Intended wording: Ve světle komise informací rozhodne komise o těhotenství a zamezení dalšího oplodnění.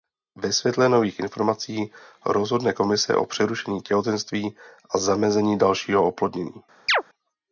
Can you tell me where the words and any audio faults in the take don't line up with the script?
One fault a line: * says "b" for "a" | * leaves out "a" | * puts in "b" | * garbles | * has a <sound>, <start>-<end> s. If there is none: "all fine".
* says "nových" for "komise"
* puts in "přerušení"
* has a chirp, 6.9-7.0 s